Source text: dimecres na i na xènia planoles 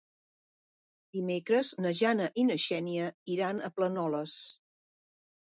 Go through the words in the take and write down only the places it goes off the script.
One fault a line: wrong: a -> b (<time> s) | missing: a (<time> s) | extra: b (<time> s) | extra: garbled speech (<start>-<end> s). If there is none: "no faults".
extra: jana (2.0 s)
extra: iran a (3.4 s)